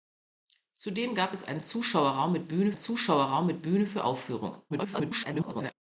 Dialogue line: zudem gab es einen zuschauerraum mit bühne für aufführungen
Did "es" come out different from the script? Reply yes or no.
no